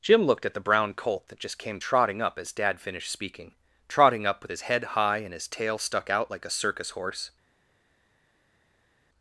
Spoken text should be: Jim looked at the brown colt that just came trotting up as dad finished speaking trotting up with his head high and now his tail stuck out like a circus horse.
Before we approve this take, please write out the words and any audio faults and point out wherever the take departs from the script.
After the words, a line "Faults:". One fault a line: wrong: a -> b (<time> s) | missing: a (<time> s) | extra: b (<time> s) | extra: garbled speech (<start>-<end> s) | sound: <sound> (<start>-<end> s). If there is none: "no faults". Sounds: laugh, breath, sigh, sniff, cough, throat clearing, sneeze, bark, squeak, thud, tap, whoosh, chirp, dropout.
Jim looked at the brown colt that just came trotting up as dad finished speaking trotting up with his head high and his tail stuck out like a circus horse.
Faults:
missing: now (5.3 s)